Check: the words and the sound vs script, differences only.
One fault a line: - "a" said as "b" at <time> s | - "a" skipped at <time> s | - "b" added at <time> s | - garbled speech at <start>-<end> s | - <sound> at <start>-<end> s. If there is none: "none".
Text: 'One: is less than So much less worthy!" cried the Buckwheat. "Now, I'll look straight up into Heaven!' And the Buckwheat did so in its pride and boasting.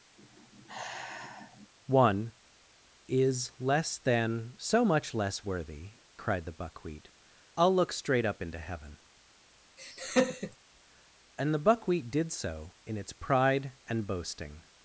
- sigh at 0.2-1.7 s
- "Now" skipped at 7.1 s
- laugh at 9.8-10.6 s